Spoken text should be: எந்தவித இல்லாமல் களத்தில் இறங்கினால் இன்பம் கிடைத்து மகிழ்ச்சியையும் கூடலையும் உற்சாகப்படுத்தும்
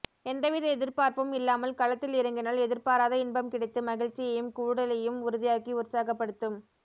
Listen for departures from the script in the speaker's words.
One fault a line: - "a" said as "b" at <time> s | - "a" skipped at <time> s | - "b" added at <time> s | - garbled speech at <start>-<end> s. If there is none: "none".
- "எதிர்பார்ப்பும்" added at 0.7 s
- "எதிர்பாராத" added at 2.6 s
- "உறுதியாக்கி" added at 5.2 s